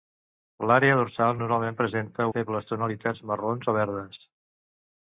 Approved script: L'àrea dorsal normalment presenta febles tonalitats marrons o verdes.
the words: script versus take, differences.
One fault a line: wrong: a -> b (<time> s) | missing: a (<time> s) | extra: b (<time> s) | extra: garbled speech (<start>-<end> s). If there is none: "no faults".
no faults